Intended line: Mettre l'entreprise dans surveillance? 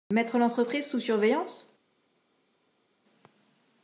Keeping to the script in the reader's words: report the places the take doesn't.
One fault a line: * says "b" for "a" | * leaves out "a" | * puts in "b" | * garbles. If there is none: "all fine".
* says "sous" for "dans"